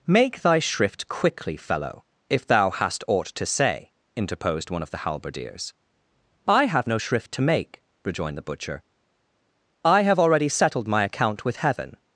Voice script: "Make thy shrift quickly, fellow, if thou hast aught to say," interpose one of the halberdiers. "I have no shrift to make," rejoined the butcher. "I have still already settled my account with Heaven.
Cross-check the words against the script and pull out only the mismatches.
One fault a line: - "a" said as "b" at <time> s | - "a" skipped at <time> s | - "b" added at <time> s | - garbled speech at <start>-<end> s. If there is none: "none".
- "interpose" said as "interposed" at 4.2 s
- "still" skipped at 10.2 s